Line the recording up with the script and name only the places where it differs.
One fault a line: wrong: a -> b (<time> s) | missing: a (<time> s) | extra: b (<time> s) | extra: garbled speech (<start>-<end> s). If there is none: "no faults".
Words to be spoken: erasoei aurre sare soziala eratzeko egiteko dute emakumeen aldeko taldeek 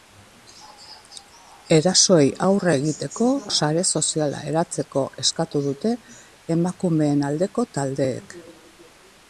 extra: egiteko (2.8 s)
wrong: egiteko -> eskatu (5.3 s)